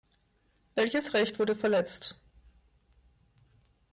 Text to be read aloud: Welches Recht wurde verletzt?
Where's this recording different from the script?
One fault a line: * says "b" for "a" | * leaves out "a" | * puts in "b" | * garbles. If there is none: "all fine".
all fine